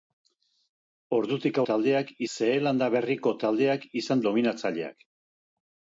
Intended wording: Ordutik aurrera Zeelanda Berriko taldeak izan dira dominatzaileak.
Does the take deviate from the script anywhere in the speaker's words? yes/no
yes